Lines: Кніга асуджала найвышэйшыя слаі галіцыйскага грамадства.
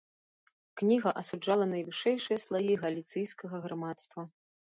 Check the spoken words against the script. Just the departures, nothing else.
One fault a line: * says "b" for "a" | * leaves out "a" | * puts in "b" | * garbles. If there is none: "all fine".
all fine